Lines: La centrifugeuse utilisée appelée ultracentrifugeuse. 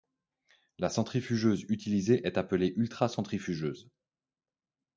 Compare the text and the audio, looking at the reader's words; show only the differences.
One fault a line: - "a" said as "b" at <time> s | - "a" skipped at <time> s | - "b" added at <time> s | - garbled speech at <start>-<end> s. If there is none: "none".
- "est" added at 2.2 s